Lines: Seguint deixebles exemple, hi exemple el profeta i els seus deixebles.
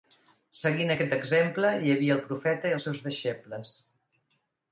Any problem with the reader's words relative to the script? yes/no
yes